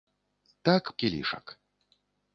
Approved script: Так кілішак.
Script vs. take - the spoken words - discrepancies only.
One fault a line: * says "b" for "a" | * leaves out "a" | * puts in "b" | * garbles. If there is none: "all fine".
all fine